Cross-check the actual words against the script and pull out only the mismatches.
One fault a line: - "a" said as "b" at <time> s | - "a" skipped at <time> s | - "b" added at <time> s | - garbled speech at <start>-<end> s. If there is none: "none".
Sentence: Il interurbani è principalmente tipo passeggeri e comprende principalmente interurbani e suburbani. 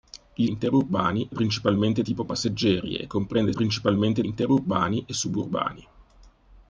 none